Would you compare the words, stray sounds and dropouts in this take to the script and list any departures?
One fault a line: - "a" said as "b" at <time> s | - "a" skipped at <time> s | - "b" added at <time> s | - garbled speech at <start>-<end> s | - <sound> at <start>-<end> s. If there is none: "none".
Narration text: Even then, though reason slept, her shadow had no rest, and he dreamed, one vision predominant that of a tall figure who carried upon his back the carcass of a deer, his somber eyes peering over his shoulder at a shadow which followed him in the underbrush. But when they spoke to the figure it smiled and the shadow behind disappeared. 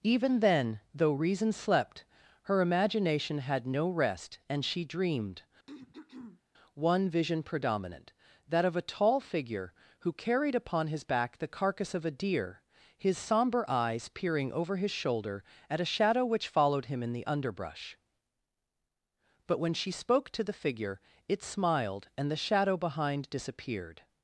- "shadow" said as "imagination" at 2.6 s
- "he" said as "she" at 4.7 s
- throat clearing at 5.7-6.4 s
- "they" said as "she" at 19.7 s